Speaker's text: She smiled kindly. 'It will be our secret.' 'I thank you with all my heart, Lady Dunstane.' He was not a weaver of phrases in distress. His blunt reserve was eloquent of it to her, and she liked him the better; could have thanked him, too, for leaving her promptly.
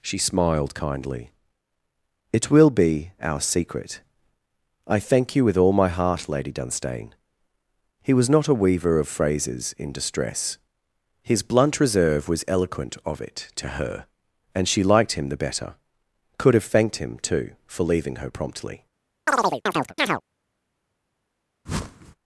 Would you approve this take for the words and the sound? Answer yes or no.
no